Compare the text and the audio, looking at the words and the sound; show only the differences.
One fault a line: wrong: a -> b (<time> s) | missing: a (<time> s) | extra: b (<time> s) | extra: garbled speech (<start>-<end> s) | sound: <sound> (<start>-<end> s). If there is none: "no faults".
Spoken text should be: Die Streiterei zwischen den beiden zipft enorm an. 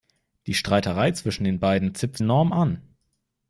no faults